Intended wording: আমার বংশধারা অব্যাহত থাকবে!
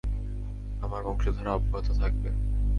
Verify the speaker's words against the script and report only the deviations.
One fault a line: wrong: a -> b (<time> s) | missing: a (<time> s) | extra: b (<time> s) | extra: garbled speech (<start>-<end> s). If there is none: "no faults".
no faults